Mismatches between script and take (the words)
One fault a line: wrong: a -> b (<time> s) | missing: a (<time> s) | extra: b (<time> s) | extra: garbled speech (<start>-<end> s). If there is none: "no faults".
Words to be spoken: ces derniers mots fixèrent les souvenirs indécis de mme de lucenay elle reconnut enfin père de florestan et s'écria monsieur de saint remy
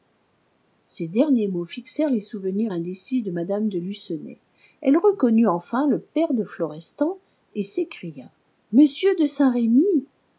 extra: le (5.9 s)